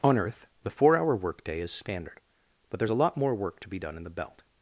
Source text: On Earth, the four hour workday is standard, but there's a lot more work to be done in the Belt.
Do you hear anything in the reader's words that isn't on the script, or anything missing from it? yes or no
no